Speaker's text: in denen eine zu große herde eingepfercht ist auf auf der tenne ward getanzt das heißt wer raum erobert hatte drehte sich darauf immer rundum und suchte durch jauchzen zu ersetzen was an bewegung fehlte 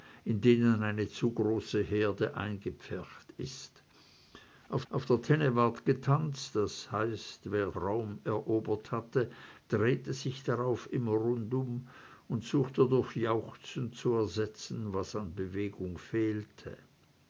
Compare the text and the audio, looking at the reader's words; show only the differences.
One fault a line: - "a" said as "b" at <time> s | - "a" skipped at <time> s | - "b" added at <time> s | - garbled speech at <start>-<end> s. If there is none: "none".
none